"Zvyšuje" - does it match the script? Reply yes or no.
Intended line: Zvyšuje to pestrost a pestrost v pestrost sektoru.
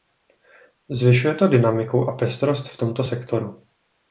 yes